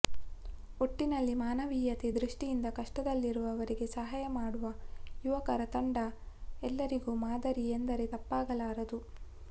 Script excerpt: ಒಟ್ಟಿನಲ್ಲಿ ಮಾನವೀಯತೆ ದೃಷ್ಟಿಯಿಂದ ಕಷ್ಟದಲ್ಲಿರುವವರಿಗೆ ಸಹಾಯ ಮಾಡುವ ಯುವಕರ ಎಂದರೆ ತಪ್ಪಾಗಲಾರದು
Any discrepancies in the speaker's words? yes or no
yes